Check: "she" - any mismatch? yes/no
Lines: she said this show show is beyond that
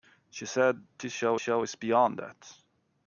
no